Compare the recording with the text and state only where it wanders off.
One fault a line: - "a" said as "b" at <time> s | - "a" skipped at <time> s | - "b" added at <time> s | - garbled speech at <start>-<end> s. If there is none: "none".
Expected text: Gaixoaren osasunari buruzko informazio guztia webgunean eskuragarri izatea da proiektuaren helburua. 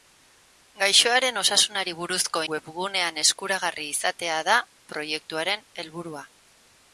- "informazio guztia" skipped at 2.4 s